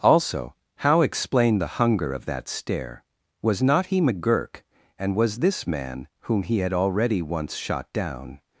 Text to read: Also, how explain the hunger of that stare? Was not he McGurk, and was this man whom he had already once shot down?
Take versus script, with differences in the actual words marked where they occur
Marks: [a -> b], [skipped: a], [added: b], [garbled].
Also, how explain the hunger of that stare? Was not he McGurk, and was this man whom he had already once shot down?